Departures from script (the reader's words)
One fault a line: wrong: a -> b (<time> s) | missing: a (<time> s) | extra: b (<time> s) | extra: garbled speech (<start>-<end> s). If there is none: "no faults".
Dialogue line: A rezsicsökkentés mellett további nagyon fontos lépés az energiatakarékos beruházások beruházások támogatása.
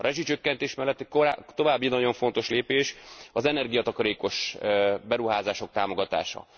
missing: beruházások (5.7 s)